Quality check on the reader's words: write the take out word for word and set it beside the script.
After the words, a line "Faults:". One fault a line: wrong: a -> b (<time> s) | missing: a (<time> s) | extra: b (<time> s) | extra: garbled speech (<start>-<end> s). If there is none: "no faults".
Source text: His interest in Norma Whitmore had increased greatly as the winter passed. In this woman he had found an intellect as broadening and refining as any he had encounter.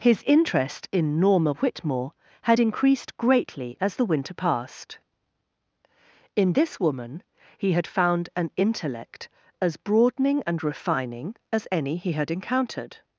His interest in Norma Whitmore had increased greatly as the winter passed. In this woman he had found an intellect as broadening and refining as any he had encountered.
Faults:
wrong: encounter -> encountered (12.3 s)